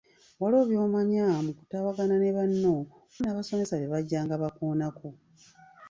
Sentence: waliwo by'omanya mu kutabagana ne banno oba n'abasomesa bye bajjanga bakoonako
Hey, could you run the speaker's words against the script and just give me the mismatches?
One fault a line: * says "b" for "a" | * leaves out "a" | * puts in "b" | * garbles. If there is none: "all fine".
* leaves out "oba"